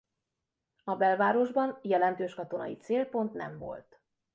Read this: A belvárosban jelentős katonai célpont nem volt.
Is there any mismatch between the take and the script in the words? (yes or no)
no